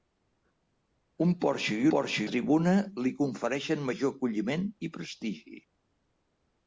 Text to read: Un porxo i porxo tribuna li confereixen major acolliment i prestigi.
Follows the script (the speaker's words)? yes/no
yes